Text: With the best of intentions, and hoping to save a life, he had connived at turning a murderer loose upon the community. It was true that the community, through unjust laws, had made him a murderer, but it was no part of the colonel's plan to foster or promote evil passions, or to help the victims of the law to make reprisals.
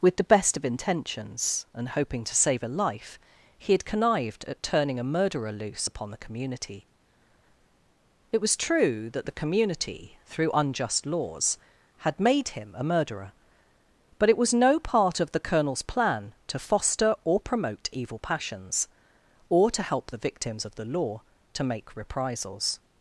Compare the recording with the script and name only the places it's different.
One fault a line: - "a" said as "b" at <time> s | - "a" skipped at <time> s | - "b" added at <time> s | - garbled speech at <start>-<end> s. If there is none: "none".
none